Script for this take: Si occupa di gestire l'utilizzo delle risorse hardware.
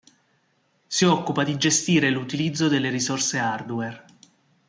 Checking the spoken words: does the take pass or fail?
pass